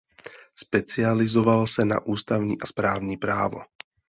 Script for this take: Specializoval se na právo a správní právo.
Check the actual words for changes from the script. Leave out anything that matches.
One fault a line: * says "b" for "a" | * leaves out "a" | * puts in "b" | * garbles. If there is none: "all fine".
* says "ústavní" for "právo"